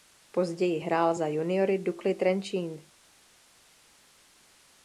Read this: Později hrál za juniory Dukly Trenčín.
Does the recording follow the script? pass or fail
pass